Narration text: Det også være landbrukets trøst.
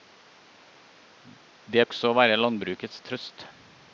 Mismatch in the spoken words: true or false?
false